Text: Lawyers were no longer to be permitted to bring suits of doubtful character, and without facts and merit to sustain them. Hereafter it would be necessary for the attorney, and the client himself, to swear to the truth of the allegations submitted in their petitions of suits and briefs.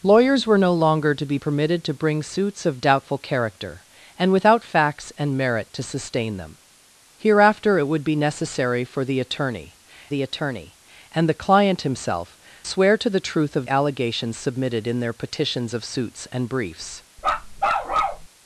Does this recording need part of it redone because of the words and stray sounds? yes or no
yes